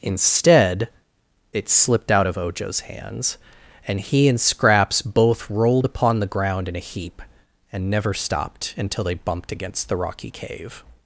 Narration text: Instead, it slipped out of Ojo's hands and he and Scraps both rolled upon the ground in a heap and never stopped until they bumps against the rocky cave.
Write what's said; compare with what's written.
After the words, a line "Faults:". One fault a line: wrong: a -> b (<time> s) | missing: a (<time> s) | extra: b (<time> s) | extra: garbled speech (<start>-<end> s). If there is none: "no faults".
Instead, it slipped out of Ojo's hands and he and Scraps both rolled upon the ground in a heap and never stopped until they bumped against the rocky cave.
Faults:
wrong: bumps -> bumped (9.1 s)